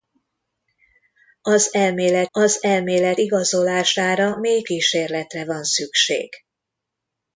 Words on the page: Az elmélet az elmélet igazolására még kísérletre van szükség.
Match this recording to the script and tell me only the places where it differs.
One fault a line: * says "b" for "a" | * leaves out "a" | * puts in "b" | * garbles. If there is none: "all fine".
all fine